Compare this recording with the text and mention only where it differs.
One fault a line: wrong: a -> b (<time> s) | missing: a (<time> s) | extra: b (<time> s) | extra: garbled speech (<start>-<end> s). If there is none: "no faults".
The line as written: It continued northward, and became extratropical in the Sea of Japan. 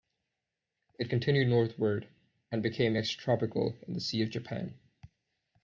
no faults